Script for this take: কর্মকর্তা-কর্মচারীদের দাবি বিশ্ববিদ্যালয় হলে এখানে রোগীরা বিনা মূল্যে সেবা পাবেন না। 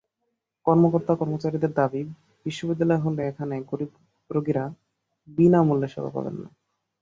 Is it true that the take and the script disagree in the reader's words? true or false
true